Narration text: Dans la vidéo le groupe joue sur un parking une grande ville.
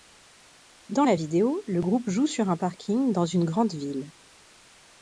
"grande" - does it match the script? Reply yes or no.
yes